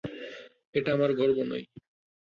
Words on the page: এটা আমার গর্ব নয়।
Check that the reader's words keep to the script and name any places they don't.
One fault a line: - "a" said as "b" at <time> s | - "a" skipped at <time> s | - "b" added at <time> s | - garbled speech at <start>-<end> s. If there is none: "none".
none